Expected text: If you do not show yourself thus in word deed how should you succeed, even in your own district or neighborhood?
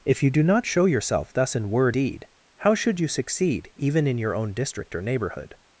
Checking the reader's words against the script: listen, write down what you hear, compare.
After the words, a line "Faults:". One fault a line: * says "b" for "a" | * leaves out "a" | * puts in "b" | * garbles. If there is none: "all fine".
If you do not show yourself thus in word deed how should you succeed, even in your own district or neighborhood?
Faults:
all fine